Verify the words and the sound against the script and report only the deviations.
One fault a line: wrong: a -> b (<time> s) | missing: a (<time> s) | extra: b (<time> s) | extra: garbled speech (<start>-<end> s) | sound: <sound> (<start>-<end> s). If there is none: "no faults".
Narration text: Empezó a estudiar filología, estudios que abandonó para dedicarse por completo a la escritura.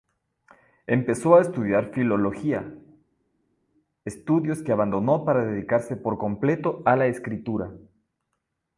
no faults